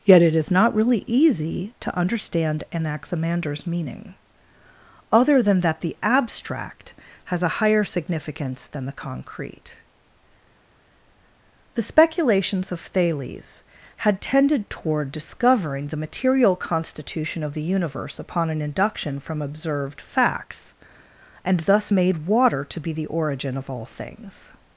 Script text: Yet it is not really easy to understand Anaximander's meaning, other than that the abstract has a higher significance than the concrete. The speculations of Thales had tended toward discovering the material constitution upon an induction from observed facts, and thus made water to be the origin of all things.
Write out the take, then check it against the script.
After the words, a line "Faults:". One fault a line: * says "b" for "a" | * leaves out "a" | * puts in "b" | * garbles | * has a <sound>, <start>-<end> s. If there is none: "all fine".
Yet it is not really easy to understand Anaximander's meaning, other than that the abstract has a higher significance than the concrete. The speculations of Thales had tended toward discovering the material constitution of the universe upon an induction from observed facts, and thus made water to be the origin of all things.
Faults:
* puts in "of the universe"